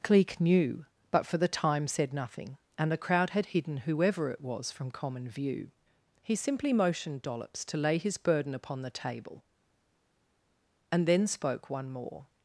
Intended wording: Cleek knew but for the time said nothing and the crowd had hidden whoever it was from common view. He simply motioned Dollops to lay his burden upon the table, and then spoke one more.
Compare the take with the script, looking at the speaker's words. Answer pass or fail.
pass